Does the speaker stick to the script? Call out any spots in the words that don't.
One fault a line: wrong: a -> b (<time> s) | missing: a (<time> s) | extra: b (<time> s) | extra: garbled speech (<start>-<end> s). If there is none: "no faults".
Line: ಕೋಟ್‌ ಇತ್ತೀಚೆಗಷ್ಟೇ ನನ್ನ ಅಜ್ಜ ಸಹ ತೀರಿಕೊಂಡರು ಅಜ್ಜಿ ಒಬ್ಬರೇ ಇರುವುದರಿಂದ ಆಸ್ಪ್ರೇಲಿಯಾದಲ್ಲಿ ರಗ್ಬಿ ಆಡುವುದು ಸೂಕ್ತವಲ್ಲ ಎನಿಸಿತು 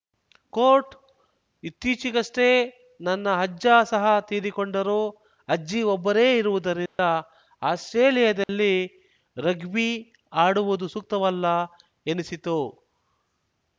no faults